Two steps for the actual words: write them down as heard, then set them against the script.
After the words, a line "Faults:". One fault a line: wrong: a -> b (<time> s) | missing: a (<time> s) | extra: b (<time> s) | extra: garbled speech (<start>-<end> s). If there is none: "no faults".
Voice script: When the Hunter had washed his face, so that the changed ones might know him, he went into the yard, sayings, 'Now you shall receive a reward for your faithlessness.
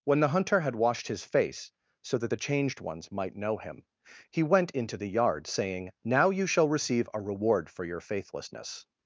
When the Hunter had washed his face, so that the changed ones might know him, he went into the yard, saying, 'Now you shall receive a reward for your faithlessness.
Faults:
wrong: sayings -> saying (5.5 s)